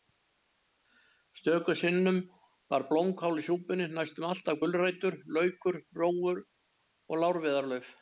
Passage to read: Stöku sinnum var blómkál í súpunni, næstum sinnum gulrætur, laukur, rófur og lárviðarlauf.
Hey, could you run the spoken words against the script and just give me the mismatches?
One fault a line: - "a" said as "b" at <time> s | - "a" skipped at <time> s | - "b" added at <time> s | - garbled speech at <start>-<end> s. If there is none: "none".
- "sinnum" said as "alltaf" at 4.3 s